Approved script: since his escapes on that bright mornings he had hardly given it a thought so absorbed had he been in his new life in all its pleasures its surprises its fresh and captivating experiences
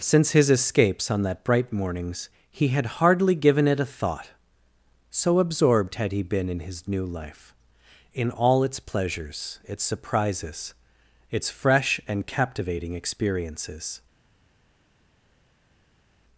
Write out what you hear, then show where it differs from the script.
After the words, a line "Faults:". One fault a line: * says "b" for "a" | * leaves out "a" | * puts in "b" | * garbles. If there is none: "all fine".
since his escapes on that bright mornings he had hardly given it a thought so absorbed had he been in his new life in all its pleasures its surprises its fresh and captivating experiences
Faults:
all fine